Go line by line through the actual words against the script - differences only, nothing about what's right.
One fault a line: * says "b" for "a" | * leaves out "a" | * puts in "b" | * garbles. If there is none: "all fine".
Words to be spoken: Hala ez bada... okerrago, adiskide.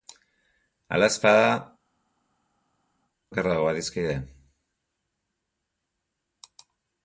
all fine